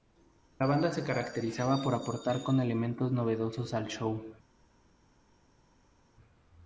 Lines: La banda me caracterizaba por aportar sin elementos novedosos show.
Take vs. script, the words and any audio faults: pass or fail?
fail